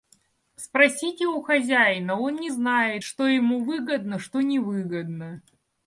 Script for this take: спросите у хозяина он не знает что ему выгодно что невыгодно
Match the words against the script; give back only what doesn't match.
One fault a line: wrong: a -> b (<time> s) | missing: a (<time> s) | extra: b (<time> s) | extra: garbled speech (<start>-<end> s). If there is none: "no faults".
no faults